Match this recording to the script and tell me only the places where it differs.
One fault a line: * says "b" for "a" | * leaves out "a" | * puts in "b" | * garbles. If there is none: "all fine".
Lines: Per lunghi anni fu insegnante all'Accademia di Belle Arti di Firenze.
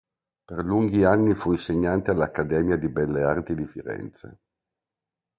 all fine